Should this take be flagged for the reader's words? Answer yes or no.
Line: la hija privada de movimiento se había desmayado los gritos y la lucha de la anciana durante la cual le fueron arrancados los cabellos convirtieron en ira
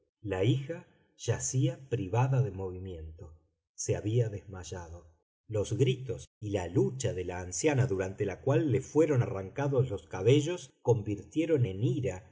yes